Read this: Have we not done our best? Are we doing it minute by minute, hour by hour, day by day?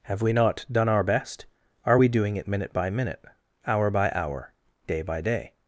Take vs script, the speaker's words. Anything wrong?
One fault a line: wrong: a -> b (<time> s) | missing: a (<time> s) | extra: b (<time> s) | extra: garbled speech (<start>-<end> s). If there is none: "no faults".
no faults